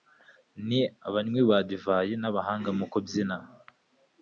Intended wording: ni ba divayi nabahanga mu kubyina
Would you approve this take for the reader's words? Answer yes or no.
no